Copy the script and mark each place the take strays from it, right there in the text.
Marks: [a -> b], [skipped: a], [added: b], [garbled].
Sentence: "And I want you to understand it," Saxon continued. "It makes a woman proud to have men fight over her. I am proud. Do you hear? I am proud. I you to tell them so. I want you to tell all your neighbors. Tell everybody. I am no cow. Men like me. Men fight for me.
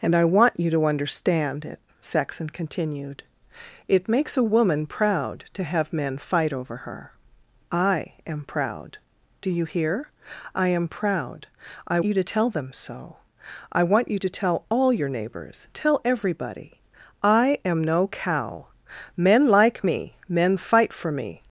"And I want you to understand it," Saxon continued. "It makes a woman proud to have men fight over her. I am proud. Do you hear? I am proud. I you to tell them so. I want you to tell all your neighbors. Tell everybody. I am no cow. Men like me. Men fight for me.